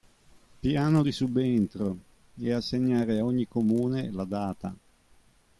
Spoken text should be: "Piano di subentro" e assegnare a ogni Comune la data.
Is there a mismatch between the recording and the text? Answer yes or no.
no